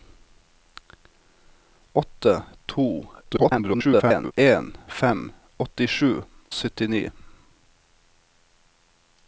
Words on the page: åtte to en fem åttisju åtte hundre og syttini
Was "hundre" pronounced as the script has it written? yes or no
no